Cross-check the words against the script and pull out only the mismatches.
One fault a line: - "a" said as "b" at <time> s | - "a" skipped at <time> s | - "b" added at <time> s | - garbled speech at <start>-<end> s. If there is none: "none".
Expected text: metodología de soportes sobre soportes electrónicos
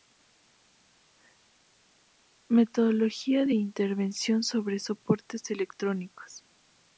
- "soportes" said as "intervención" at 3.5 s